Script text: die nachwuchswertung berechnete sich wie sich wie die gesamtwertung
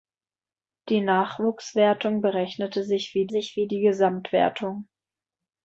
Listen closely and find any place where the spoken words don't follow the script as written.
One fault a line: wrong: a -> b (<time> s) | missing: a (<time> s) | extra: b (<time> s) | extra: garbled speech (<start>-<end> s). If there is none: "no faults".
no faults